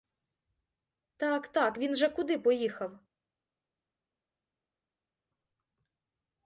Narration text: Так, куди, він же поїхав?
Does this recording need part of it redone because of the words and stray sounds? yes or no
yes